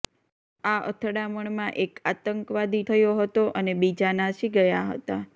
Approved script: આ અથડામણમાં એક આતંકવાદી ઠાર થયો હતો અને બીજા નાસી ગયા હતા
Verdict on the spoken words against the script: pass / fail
fail